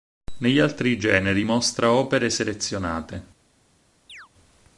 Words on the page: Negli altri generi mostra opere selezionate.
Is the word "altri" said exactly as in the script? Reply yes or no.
yes